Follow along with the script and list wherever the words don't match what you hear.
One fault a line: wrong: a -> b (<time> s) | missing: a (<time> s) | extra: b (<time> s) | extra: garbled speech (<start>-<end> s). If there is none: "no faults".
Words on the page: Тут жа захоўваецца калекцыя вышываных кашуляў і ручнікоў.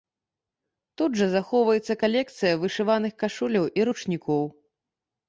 no faults